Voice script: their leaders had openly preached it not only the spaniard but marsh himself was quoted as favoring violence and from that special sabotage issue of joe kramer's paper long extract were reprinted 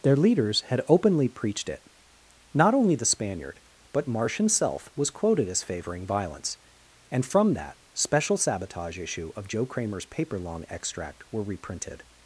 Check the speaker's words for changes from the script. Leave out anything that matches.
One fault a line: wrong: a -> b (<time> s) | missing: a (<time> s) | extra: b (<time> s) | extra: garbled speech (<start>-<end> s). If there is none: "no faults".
no faults